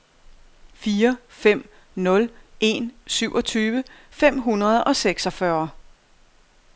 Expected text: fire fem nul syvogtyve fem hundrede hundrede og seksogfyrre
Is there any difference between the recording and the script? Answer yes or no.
yes